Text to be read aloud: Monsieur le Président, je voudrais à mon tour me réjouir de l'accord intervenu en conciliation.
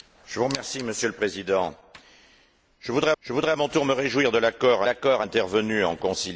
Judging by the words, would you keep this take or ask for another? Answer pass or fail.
fail